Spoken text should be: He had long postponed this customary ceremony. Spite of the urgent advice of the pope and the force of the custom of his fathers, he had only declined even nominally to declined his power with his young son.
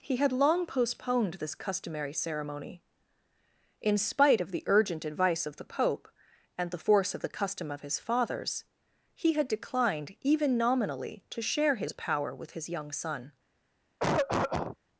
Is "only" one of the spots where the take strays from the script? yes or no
yes